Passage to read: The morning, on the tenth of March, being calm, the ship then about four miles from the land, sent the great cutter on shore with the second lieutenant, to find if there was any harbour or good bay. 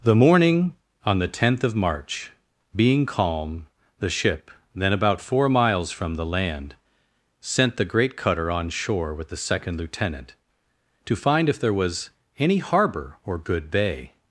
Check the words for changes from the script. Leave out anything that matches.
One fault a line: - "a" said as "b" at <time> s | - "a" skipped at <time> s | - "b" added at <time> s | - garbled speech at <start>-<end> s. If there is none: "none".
none